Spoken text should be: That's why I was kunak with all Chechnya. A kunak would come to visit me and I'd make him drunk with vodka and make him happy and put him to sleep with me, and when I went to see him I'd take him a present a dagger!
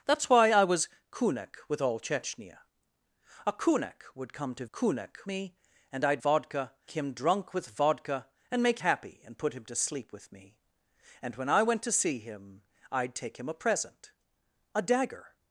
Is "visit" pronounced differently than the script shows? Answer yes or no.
yes